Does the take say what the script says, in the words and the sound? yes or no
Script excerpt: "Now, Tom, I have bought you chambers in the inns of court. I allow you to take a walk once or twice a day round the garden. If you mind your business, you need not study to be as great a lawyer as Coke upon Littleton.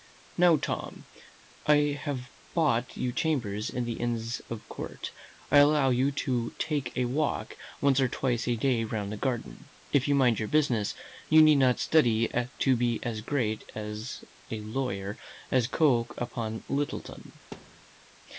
no